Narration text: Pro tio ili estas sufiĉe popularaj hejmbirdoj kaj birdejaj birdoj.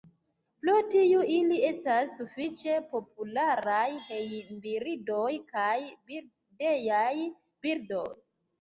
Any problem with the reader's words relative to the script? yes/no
no